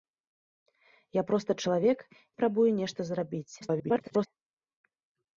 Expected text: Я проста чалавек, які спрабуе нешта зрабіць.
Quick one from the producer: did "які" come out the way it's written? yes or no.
no